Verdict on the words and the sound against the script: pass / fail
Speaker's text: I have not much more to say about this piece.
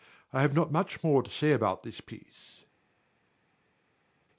pass